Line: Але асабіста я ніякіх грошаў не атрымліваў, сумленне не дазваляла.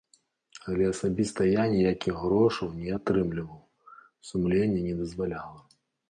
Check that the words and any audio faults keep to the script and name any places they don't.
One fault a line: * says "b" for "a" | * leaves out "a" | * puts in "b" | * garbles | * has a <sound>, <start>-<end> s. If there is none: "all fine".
all fine